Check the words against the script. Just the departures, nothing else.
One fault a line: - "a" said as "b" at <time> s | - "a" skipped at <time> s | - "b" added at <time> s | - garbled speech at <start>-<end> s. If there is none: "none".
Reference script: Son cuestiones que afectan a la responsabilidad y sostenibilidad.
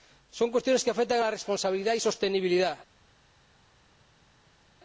none